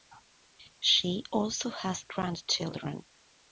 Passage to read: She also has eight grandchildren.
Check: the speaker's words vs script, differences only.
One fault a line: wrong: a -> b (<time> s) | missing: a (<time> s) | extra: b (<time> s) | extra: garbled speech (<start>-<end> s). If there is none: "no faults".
missing: eight (2.1 s)